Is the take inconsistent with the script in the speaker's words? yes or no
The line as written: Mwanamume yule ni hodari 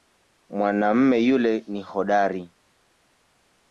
no